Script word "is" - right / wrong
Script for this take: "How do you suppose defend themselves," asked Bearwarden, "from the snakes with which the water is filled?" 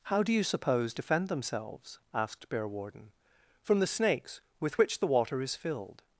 right